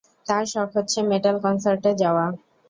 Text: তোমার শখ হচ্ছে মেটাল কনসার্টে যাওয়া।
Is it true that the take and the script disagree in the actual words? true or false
true